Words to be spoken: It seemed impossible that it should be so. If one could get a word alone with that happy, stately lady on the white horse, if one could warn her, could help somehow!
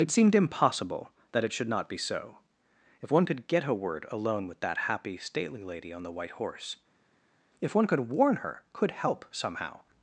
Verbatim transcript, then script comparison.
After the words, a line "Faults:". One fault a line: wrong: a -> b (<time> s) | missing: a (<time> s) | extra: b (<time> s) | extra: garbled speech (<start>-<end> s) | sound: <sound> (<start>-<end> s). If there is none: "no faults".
It seemed impossible that it should not be so. If one could get a word alone with that happy, stately lady on the white horse, if one could warn her, could help somehow!
Faults:
extra: not (1.7 s)